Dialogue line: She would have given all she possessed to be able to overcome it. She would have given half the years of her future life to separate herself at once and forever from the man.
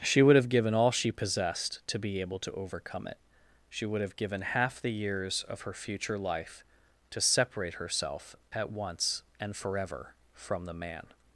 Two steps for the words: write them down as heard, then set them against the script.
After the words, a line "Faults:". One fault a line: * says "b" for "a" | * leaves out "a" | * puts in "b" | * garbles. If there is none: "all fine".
She would have given all she possessed to be able to overcome it. She would have given half the years of her future life to separate herself at once and forever from the man.
Faults:
all fine